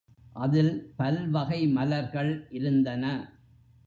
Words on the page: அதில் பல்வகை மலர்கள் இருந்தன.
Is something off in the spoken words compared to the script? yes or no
no